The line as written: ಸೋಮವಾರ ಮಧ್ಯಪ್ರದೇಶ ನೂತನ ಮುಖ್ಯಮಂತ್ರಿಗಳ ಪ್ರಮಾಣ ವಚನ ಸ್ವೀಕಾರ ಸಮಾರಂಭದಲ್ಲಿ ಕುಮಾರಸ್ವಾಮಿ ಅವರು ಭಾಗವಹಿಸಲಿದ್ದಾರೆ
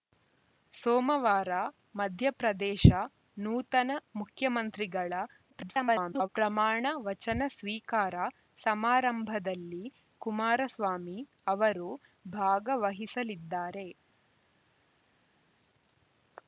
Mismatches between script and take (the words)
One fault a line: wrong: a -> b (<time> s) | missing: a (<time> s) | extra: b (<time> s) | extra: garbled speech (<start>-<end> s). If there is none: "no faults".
extra: garbled speech (5.5-6.3 s)